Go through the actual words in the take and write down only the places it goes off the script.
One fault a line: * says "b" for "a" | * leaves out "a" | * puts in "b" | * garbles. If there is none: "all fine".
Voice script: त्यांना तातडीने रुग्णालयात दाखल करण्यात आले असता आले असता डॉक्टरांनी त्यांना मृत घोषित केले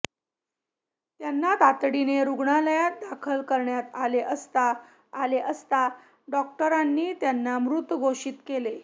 all fine